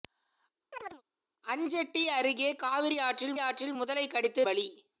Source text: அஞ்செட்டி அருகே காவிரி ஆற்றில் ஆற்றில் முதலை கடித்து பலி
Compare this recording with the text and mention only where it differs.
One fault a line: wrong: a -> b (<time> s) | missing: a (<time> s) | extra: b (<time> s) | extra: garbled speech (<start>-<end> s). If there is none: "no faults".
no faults